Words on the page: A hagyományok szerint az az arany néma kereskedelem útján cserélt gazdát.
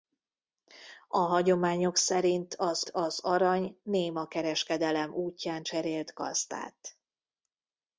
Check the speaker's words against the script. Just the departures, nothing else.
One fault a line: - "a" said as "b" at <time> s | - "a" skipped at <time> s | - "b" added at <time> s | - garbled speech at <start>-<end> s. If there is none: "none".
none